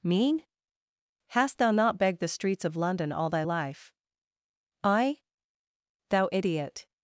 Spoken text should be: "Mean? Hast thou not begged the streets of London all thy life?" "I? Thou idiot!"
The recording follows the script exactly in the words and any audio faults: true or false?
true